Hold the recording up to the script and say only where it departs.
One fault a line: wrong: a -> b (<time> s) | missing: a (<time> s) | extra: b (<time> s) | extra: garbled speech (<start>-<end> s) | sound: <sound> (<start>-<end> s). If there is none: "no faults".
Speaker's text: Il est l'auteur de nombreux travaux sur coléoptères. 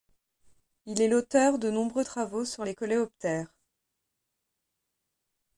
extra: les (2.6 s)